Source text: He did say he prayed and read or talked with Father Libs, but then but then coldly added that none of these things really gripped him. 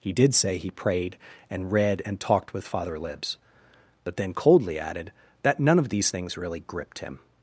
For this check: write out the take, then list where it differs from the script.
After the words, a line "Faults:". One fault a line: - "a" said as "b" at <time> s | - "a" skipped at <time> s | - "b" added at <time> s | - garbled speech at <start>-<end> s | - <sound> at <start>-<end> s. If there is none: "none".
He did say he prayed and read and talked with Father Libs, but then coldly added that none of these things really gripped him.
Faults:
- "or" said as "and" at 2.0 s
- "but then" skipped at 4.3 s